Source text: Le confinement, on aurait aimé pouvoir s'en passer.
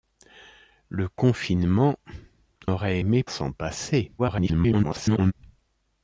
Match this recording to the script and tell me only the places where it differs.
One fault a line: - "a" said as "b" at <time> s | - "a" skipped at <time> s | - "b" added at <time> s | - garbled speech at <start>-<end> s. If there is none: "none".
- "on" skipped at 2.0 s
- "pouvoir" skipped at 3.2 s
- garbled speech at 4.2-5.3 s